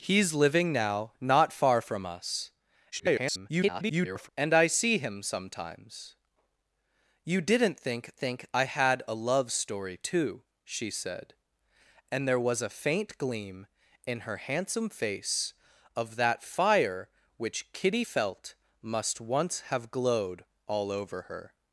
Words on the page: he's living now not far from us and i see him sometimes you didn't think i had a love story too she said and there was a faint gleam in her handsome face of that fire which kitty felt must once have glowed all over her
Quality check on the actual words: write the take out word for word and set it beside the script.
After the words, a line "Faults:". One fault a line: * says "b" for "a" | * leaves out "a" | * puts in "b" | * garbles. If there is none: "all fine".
he's living now not far from us [garbled] and i see him sometimes you didn't think think i had a love story too she said and there was a faint gleam in her handsome face of that fire which kitty felt must once have glowed all over her
Faults:
* garbles
* puts in "think"